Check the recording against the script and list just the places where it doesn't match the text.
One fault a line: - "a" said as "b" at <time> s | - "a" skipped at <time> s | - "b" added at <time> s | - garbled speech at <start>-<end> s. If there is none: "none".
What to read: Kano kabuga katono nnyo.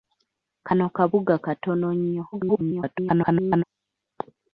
- garbled speech at 2.3-3.6 s